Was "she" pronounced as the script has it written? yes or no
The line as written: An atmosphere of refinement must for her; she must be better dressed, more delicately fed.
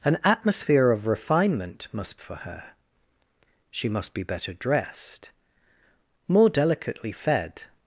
yes